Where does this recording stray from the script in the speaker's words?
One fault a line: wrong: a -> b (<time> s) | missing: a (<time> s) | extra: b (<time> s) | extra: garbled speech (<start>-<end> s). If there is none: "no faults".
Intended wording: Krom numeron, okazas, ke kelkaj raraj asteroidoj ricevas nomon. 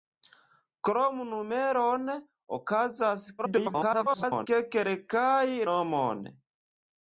extra: garbled speech (3.4-4.5 s)
missing: raraj asteroidoj ricevas (5.5 s)